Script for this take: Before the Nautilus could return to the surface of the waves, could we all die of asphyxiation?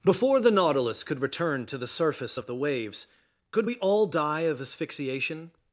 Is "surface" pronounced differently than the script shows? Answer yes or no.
no